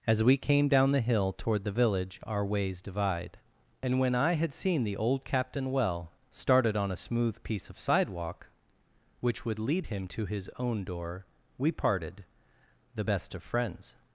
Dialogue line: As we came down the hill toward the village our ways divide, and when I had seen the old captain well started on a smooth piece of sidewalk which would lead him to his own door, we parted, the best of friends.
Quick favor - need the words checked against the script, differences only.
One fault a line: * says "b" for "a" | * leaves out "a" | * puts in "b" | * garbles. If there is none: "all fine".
all fine